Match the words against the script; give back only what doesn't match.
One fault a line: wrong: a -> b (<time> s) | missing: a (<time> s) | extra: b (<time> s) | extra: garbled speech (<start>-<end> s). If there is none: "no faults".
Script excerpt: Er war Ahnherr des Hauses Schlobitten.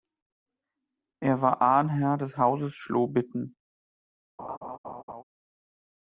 no faults